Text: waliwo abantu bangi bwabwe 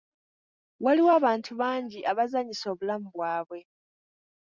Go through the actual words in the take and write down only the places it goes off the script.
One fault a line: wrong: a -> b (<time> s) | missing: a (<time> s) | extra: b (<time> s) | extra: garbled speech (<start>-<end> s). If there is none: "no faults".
extra: abazanyisa obulamu (2.1 s)